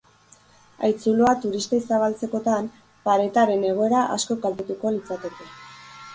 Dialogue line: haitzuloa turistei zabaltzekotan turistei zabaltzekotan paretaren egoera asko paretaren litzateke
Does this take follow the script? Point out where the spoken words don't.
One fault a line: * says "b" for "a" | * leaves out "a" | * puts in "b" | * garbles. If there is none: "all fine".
* leaves out "turistei zabaltzekotan"
* says "kaltetuko" for "paretaren"